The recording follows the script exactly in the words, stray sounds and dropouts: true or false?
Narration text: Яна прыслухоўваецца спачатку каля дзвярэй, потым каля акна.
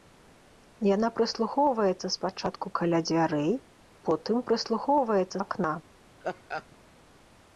false